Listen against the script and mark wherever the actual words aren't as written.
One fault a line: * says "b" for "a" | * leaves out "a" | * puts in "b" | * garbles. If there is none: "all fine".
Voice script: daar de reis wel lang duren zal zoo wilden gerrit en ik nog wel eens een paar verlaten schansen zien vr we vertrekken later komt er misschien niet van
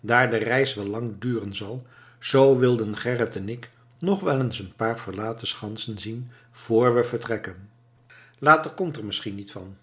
all fine